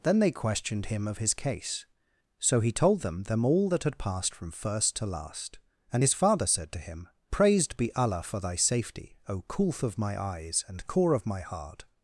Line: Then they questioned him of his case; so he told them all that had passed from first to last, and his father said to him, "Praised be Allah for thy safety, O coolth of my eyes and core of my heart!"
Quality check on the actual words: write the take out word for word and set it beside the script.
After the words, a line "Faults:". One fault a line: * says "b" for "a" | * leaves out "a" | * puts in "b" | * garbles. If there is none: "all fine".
Then they questioned him of his case; so he told them them all that had passed from first to last, and his father said to him, "Praised be Allah for thy safety, O coolth of my eyes and core of my heart!"
Faults:
* puts in "them"